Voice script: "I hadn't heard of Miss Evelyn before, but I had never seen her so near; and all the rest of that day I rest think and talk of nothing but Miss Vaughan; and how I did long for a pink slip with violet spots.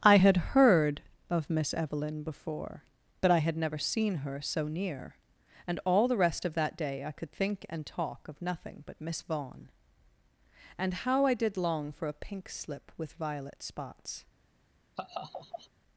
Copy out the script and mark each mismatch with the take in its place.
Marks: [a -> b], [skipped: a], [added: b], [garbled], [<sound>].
"I [hadn't -> had] heard of Miss Evelyn before, but I had never seen her so near; and all the rest of that day I [rest -> could] think and talk of nothing but Miss Vaughan; and how I did long for a pink slip with violet spots. [laugh]